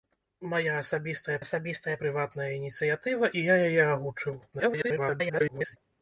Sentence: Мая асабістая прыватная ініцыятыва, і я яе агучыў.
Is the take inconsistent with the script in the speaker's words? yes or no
yes